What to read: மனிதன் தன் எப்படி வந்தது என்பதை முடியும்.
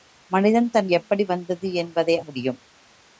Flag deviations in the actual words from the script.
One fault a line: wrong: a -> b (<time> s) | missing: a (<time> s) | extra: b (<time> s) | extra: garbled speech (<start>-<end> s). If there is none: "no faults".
no faults